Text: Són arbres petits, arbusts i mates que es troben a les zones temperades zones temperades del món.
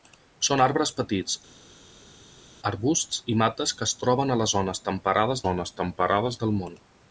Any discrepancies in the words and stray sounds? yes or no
no